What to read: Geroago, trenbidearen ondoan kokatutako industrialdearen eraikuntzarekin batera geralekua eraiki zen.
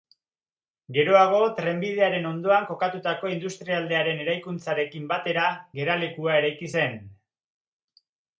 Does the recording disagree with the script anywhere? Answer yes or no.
no